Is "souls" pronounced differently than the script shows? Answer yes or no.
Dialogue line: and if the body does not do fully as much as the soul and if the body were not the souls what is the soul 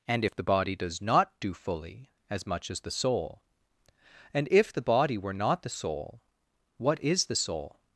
yes